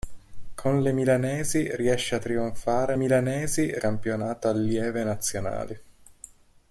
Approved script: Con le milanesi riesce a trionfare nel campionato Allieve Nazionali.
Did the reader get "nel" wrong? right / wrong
wrong